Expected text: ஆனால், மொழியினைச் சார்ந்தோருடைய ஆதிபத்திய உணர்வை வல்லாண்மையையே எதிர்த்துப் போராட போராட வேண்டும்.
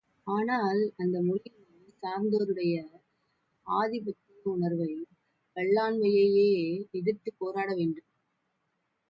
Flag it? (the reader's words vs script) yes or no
yes